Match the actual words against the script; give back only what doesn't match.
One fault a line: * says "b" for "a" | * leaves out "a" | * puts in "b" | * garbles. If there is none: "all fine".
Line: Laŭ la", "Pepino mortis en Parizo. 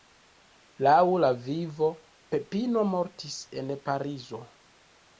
* puts in "Vivo"